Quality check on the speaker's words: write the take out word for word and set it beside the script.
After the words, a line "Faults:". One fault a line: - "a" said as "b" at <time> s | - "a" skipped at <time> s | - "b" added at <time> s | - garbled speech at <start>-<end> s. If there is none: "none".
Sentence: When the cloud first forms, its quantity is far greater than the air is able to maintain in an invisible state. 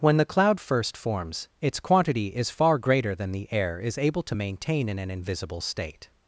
When the cloud first forms, its quantity is far greater than the air is able to maintain in an invisible state.
Faults:
none